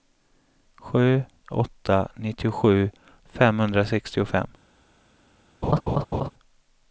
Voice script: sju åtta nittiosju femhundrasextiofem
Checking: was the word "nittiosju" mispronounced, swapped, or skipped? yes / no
no